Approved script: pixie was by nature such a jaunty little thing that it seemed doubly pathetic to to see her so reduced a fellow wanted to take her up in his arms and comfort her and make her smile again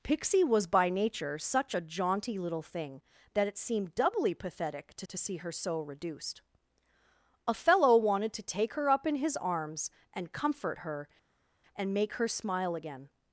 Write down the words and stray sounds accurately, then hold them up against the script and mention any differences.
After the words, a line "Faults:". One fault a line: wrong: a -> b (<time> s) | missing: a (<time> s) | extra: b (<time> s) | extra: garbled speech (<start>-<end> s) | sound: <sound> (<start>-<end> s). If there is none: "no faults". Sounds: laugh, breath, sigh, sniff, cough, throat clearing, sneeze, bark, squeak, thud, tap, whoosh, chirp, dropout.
pixie was by nature such a jaunty little thing that it seemed doubly pathetic to to see her so reduced a fellow wanted to take her up in his arms and comfort her and make her smile again
Faults:
no faults